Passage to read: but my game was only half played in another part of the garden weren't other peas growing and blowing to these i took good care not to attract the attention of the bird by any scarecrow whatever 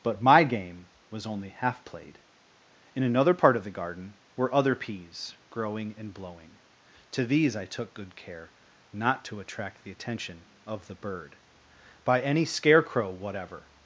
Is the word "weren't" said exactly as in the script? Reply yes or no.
no